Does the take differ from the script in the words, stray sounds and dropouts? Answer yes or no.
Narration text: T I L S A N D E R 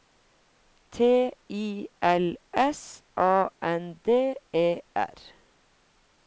no